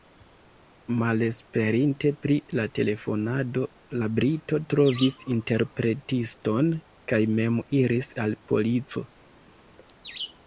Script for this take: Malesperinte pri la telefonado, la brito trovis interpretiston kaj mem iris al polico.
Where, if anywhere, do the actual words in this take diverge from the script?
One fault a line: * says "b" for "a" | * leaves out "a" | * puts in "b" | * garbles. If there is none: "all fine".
all fine